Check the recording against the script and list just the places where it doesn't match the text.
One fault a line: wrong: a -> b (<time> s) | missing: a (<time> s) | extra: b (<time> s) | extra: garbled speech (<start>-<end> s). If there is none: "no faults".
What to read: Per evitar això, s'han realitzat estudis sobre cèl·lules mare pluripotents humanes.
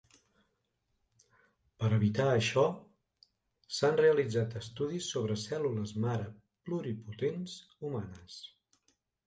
no faults